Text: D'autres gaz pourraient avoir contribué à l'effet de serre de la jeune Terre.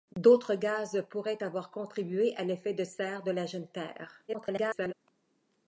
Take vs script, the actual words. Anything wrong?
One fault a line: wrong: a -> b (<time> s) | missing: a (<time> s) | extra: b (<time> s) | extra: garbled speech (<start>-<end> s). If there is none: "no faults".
extra: garbled speech (4.3-4.9 s)